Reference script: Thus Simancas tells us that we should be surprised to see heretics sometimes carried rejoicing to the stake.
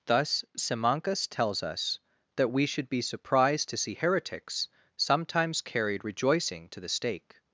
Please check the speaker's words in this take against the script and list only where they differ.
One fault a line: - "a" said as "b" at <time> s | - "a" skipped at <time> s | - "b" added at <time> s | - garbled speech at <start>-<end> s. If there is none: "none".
none